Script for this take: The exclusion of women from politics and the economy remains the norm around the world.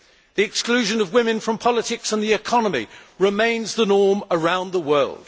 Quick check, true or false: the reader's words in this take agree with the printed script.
true